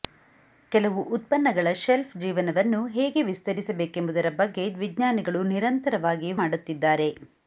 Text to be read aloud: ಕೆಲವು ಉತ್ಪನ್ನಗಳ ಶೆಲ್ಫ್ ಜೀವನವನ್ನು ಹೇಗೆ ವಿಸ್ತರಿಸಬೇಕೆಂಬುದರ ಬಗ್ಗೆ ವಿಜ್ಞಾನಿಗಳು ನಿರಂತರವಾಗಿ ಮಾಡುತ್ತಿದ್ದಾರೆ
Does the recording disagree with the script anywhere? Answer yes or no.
no